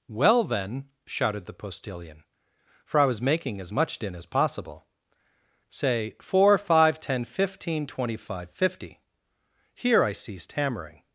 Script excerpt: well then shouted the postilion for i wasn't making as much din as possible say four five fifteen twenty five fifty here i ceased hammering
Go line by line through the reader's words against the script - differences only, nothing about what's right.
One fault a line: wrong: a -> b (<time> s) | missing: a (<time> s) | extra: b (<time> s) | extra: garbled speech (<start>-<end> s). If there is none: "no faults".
wrong: wasn't -> was (3.0 s)
extra: ten (7.0 s)